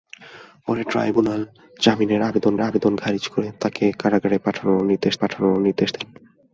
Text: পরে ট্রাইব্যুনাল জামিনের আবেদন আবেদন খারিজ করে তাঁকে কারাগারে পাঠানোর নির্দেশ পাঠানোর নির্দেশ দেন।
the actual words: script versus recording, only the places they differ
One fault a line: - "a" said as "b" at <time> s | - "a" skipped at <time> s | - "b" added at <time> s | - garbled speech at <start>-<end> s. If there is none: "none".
none